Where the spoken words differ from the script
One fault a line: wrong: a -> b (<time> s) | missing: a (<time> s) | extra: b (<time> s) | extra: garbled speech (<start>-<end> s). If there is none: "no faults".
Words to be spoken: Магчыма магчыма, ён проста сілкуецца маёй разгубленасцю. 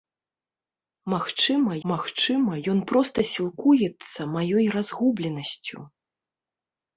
no faults